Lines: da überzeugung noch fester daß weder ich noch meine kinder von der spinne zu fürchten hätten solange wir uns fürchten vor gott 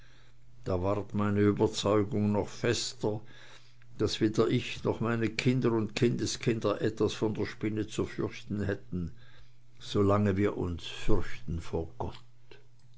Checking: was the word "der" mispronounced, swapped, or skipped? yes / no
no